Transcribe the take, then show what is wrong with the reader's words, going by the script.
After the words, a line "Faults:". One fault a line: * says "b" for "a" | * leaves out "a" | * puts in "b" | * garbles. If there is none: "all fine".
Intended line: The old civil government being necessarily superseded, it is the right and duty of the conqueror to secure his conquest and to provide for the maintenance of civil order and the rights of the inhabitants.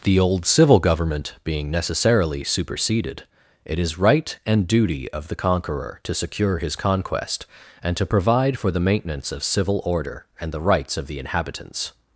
The old civil government being necessarily superseded, it is right and duty of the conqueror to secure his conquest and to provide for the maintenance of civil order and the rights of the inhabitants.
Faults:
* leaves out "the"